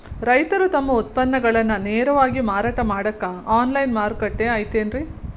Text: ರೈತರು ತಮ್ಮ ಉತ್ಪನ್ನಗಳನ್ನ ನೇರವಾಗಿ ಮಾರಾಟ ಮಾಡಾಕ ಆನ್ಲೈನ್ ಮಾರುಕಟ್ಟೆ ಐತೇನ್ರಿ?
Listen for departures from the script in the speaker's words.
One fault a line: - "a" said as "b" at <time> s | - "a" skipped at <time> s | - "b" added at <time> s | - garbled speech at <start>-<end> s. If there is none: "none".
none